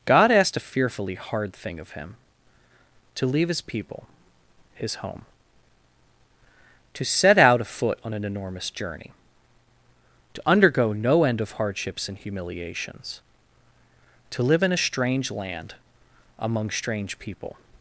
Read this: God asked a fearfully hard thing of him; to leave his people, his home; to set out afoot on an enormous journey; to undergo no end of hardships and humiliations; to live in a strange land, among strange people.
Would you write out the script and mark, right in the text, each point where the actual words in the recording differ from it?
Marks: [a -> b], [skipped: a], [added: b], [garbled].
God asked a fearfully hard thing of him; to leave his people, his home; to set out afoot on an enormous journey; to undergo no end of hardships and humiliations; to live in a strange land, among strange people.